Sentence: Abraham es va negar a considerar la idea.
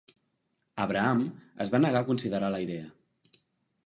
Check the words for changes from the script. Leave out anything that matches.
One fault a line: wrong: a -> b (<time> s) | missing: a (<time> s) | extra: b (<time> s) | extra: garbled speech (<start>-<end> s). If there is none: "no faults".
no faults